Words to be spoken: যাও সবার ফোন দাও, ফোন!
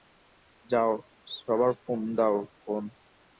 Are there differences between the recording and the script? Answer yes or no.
no